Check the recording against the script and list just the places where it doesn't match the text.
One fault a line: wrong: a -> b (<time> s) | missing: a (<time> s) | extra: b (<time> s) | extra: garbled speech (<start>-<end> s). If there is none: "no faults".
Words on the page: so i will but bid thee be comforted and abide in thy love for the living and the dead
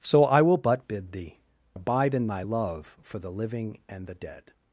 missing: be comforted and (1.4 s)